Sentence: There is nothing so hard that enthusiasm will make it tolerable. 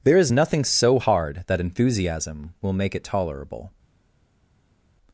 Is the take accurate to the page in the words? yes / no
yes